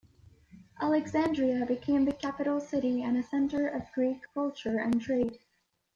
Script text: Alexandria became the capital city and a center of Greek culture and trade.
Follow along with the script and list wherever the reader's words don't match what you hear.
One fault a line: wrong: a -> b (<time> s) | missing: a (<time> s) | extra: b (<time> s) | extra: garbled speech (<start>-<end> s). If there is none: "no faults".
no faults